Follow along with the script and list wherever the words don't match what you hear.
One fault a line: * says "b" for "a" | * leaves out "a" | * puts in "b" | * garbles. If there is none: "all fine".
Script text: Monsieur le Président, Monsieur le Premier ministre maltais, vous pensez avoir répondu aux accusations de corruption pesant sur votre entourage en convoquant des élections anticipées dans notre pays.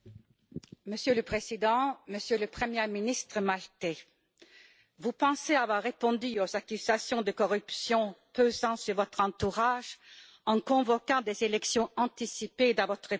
* says "votre" for "notre"